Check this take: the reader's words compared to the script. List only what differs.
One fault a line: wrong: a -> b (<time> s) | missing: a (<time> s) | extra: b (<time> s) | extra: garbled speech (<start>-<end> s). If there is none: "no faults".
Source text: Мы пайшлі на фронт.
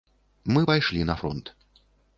no faults